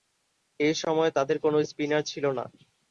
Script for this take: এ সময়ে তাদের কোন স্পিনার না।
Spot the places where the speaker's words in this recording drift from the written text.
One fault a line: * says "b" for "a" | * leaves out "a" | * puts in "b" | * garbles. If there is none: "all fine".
* puts in "ছিল"